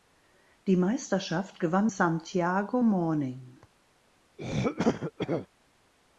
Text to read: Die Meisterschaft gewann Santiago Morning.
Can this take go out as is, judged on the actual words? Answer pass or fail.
pass